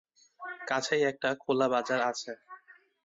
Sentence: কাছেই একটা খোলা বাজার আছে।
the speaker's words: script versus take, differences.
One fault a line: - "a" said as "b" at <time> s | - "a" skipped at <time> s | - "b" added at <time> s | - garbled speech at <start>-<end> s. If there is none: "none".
none